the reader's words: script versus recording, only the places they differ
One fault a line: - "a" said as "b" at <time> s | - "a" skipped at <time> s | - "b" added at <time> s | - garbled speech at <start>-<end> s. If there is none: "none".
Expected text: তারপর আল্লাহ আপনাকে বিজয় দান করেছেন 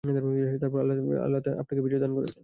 none